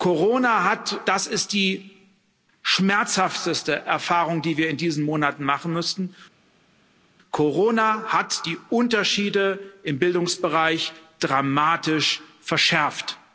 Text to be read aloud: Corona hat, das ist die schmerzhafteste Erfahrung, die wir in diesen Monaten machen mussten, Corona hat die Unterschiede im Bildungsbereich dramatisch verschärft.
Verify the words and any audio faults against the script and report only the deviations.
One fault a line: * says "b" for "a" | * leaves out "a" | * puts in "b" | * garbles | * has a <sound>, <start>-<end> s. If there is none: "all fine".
all fine